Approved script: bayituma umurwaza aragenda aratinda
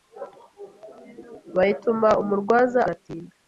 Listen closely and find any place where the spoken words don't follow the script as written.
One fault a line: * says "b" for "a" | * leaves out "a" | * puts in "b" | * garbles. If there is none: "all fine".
* leaves out "aragenda"